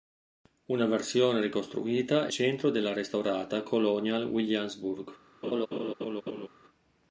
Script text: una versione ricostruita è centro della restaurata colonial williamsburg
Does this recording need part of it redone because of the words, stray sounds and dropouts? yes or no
yes